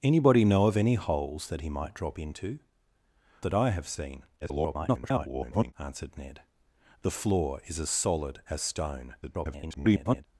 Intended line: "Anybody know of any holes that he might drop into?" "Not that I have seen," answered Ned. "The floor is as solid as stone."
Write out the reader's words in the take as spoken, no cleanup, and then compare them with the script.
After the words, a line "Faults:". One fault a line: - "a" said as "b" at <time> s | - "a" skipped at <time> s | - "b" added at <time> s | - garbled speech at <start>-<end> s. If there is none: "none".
"Anybody know of any holes that he might drop into?" "That I have seen," [garbled] answered Ned. "The floor is as solid as stone." [garbled]
Faults:
- "Not" skipped at 2.6 s
- garbled speech at 4.4-5.7 s
- garbled speech at 9.2-10.3 s